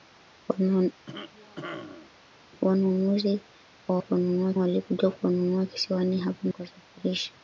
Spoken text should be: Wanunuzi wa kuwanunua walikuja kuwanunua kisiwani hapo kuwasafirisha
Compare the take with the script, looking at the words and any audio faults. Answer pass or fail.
fail